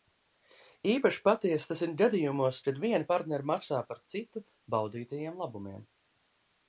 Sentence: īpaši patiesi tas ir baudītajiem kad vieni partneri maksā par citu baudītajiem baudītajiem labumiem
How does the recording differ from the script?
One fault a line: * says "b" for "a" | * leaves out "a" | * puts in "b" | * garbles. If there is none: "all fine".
* says "gadījumos" for "baudītajiem"
* leaves out "baudītajiem"